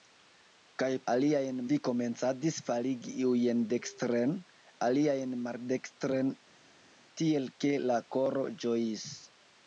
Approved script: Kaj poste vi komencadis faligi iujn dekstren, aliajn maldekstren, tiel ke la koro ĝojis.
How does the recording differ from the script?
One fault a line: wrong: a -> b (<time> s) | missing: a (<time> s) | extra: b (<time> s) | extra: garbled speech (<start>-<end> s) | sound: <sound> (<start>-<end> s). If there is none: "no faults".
wrong: poste -> aliajn (1.1 s)